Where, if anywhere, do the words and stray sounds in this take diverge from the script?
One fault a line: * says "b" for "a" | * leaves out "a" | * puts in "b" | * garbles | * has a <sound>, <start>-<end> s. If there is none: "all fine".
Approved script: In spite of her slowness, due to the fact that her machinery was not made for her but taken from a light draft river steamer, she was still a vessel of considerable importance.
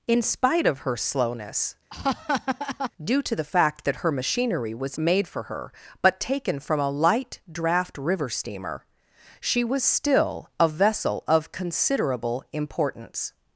* has a laugh, 1.9-2.9 s
* leaves out "not"